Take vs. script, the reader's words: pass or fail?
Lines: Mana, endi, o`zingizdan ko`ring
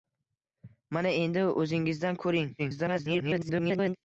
fail